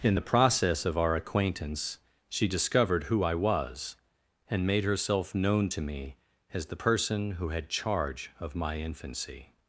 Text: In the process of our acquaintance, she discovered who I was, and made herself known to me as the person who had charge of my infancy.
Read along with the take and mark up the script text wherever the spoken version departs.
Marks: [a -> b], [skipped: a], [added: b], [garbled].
In the process of our acquaintance, she discovered who I was, and made herself known to me as the person who had charge of my infancy.